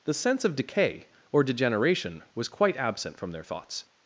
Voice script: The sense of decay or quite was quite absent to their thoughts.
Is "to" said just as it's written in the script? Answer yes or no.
no